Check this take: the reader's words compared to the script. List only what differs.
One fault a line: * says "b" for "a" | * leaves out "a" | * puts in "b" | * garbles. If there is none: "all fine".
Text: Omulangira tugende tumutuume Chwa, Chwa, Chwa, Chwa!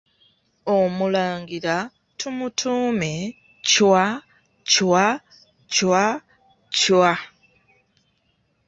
* leaves out "tugende"